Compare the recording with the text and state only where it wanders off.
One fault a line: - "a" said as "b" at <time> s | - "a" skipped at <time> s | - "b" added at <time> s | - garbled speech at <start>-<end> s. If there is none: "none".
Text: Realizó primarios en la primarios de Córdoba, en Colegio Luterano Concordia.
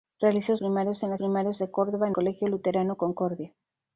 none